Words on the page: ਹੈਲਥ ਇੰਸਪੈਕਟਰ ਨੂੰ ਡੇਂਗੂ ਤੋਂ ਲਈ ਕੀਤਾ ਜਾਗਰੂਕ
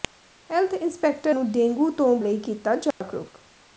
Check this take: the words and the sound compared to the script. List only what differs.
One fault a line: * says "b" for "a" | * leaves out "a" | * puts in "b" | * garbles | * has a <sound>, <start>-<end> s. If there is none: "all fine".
* has a dropout, 2.9-3.0 s